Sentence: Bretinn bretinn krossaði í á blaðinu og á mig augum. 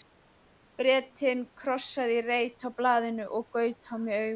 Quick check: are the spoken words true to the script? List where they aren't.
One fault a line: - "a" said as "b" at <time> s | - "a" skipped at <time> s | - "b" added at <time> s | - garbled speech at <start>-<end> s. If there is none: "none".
- "bretinn" skipped at 1.4 s
- "reit" added at 2.3 s
- "gaut" added at 3.6 s